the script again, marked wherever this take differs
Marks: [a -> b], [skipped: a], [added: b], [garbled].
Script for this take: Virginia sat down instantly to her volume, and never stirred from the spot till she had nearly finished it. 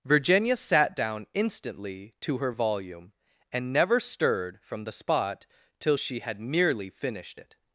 Virginia sat down instantly to her volume, and never stirred from the spot till she had nearly finished it.